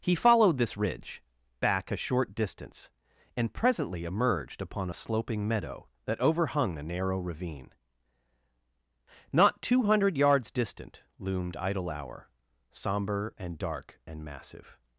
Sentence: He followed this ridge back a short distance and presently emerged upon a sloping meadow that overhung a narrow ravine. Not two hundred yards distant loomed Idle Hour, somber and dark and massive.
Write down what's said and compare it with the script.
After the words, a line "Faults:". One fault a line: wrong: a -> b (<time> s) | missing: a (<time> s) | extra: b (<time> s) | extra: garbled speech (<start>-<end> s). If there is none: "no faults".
He followed this ridge back a short distance and presently emerged upon a sloping meadow that overhung a narrow ravine. Not two hundred yards distant loomed Idle Hour, somber and dark and massive.
Faults:
no faults